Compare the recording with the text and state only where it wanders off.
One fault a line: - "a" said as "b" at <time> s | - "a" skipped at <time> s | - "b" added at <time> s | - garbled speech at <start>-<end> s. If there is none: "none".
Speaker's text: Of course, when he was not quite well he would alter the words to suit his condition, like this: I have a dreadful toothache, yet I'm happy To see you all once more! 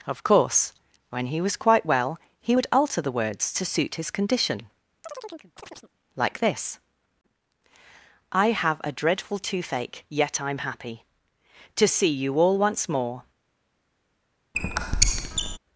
- "not" skipped at 1.6 s